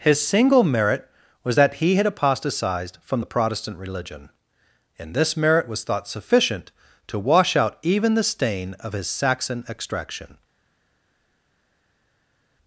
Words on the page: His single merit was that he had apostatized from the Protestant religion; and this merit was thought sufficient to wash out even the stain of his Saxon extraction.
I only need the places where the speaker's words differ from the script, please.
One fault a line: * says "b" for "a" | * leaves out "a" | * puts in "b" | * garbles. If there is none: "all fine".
all fine